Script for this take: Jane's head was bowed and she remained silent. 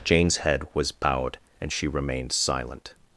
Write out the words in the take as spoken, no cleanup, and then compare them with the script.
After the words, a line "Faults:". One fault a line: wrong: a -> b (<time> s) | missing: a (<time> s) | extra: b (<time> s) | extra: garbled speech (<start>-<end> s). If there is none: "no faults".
Jane's head was bowed and she remained silent.
Faults:
no faults